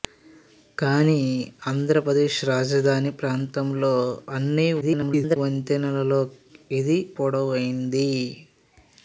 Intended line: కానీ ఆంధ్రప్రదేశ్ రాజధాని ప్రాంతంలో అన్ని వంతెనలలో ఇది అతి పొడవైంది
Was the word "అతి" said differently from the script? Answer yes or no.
yes